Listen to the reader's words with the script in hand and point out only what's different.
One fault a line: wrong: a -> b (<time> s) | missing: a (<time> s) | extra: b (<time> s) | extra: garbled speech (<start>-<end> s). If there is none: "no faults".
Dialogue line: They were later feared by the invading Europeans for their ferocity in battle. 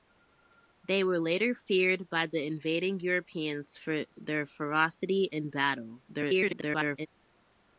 extra: garbled speech (6.1-7.1 s)